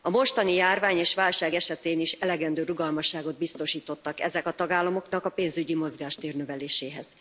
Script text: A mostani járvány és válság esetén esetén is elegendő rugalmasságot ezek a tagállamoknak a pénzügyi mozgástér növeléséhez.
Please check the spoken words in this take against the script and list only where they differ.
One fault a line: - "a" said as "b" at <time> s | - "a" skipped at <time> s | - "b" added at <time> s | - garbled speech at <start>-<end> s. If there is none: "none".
- "esetén" skipped at 2.0 s
- "biztosítottak" added at 3.4 s